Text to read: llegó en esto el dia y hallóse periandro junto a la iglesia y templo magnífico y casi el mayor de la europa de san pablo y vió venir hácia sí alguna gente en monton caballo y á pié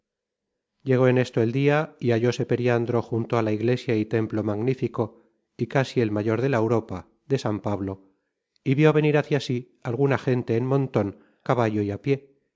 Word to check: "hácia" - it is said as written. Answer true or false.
true